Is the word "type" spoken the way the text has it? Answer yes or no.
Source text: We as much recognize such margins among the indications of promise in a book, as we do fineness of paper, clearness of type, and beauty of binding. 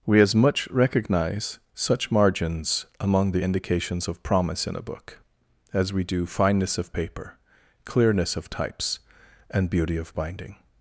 no